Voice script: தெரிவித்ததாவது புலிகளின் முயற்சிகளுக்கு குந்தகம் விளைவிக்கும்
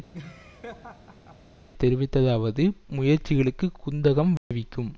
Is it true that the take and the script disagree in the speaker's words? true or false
true